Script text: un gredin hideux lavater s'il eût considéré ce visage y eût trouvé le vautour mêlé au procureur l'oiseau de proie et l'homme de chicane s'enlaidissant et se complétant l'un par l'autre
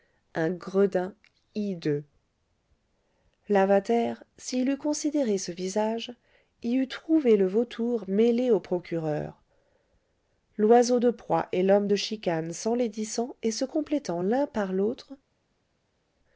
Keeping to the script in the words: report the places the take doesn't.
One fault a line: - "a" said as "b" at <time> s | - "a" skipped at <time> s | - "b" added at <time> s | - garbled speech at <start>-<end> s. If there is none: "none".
none